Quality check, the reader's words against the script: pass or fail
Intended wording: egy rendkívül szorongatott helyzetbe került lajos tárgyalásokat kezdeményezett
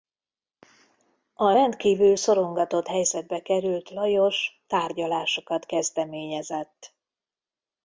fail